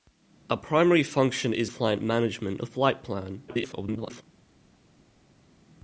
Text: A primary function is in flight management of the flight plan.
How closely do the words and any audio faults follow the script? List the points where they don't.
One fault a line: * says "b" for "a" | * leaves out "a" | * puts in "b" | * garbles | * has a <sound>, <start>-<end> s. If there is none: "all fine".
* leaves out "in"
* leaves out "of"
* garbles